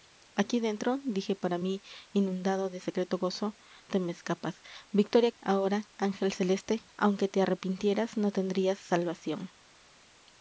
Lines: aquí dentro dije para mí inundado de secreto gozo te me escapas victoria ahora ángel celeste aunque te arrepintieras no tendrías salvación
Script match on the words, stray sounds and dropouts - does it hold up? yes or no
yes